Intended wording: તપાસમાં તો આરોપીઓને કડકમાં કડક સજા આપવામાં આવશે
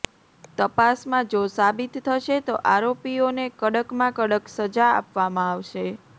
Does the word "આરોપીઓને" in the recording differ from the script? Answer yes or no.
no